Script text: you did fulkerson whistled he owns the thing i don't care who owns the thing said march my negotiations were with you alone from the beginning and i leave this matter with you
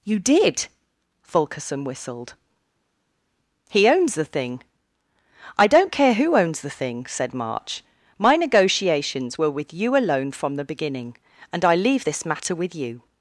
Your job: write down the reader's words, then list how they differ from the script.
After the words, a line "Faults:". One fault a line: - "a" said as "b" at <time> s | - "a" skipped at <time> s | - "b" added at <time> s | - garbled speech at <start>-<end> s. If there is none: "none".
you did fulkerson whistled he owns the thing i don't care who owns the thing said march my negotiations were with you alone from the beginning and i leave this matter with you
Faults:
none